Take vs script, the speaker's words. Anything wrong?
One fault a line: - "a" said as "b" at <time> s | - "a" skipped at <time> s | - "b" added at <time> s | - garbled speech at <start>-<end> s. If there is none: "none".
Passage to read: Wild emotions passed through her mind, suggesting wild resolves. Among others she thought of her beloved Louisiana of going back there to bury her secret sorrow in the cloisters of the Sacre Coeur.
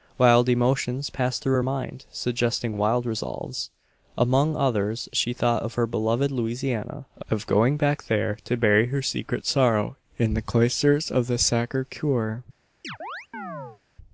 none